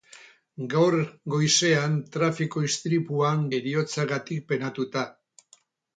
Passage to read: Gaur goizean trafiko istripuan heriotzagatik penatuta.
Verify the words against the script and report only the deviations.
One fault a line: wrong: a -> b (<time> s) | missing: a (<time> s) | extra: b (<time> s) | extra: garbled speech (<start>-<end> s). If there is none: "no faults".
no faults